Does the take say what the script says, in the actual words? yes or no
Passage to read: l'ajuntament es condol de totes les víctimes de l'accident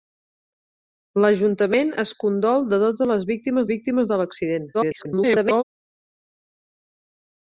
no